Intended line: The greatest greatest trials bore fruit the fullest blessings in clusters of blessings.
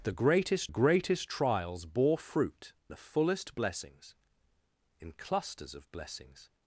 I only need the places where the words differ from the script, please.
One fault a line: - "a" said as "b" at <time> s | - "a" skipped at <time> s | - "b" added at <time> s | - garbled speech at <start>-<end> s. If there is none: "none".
none